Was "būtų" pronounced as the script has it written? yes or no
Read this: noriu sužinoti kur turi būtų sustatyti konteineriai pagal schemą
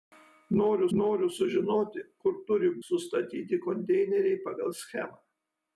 no